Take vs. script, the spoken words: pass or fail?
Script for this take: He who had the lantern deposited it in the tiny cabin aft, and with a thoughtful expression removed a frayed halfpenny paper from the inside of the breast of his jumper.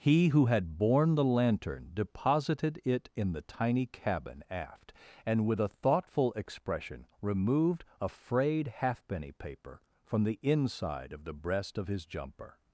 fail